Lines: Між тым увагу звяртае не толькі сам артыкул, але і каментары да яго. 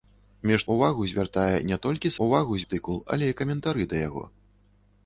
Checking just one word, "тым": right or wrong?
wrong